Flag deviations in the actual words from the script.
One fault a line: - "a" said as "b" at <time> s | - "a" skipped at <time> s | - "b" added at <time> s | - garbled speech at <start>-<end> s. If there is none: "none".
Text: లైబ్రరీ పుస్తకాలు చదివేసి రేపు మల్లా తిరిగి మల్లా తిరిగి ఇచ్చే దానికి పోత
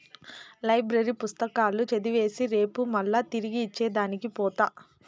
- "మల్లా తిరిగి" skipped at 3.6 s